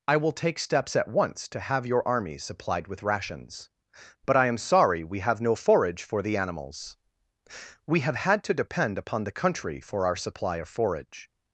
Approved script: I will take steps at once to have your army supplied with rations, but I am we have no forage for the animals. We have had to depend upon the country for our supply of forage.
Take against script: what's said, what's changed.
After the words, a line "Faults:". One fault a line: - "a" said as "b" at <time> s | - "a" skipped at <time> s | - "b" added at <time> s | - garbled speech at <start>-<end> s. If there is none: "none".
I will take steps at once to have your army supplied with rations, but I am sorry we have no forage for the animals. We have had to depend upon the country for our supply of forage.
Faults:
- "sorry" added at 4.6 s